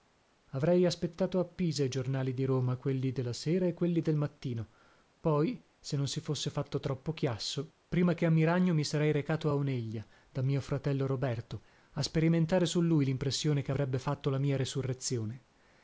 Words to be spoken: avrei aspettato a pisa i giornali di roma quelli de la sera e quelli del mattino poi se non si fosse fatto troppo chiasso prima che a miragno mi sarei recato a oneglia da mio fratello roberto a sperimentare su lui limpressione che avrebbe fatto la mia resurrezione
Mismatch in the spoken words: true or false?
false